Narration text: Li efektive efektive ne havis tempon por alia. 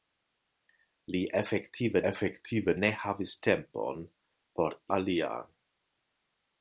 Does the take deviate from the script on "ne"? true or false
false